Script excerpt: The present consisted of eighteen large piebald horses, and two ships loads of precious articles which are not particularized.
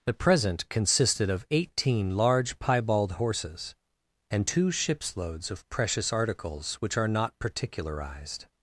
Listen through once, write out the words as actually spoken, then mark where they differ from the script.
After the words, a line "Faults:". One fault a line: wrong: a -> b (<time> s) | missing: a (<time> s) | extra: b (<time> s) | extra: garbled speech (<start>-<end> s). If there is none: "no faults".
The present consisted of eighteen large piebald horses, and two ships loads of precious articles which are not particularized.
Faults:
no faults